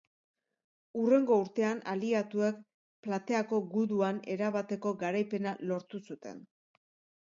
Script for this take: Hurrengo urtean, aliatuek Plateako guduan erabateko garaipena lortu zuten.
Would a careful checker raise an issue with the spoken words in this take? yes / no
no